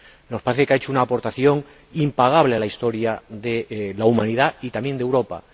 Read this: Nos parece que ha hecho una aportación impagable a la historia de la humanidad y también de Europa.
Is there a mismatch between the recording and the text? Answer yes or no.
no